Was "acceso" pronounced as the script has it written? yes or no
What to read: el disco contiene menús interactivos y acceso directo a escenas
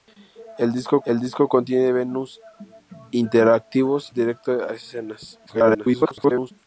no